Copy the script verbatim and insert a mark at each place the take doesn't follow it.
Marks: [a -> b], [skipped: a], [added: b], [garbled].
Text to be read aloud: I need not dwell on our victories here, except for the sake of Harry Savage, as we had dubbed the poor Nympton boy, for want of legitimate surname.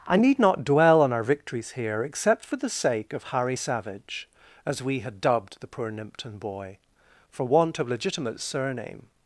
I need not dwell on our victories here, except for the sake of Harry Savage, as we had dubbed the poor Nympton boy, for want of legitimate surname.